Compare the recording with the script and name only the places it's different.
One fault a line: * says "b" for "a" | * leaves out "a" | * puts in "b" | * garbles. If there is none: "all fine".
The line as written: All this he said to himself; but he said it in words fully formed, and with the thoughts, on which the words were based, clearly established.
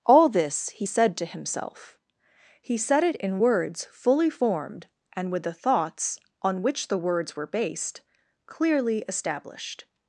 * leaves out "but"